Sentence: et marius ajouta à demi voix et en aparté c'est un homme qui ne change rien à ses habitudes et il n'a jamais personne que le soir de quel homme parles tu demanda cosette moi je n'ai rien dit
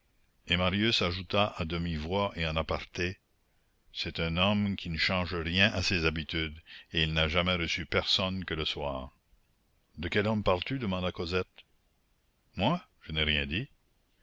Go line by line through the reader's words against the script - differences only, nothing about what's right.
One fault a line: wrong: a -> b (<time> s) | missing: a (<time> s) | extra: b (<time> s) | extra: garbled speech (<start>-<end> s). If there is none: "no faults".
extra: reçu (7.5 s)